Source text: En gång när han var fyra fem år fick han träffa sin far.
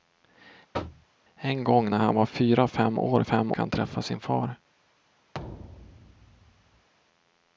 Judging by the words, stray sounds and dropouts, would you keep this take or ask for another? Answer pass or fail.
fail